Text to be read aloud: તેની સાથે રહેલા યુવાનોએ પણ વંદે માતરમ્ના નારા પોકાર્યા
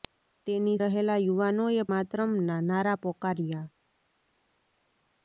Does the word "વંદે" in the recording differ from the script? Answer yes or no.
yes